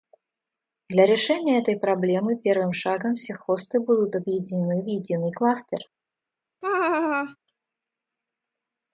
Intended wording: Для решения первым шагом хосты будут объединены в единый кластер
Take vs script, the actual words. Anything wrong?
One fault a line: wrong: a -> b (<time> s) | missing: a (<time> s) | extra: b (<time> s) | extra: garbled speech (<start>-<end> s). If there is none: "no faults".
extra: этой проблемы (1.6 s)
extra: все (3.1 s)